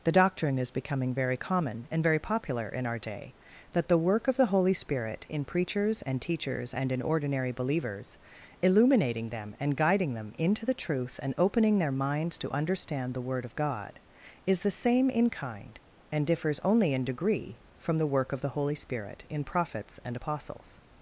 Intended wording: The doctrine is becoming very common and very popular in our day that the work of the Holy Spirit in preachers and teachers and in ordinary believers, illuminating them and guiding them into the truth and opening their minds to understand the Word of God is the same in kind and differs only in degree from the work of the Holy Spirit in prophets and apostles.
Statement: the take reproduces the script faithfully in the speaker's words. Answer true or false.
true